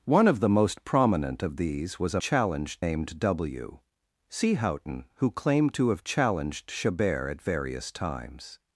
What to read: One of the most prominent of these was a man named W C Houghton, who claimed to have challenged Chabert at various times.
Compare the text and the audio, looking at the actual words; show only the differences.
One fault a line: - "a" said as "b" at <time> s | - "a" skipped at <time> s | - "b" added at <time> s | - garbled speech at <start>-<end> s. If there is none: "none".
- "man" said as "challenged" at 2.2 s